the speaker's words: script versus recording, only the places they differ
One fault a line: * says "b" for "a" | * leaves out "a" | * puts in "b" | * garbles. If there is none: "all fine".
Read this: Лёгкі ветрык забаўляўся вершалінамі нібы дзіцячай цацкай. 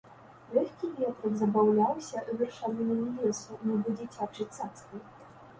* puts in "лесу"